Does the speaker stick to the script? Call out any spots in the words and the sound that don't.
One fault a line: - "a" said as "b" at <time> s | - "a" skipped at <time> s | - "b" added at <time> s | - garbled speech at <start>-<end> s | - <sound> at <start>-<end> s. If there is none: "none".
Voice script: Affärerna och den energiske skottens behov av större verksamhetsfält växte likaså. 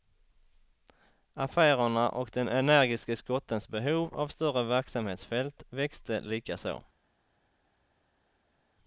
none